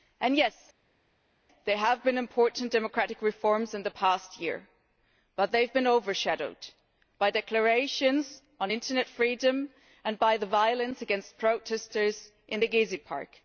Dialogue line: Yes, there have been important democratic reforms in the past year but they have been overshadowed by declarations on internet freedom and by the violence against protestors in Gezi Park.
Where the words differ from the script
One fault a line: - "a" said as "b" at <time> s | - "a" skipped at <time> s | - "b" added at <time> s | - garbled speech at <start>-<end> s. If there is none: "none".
none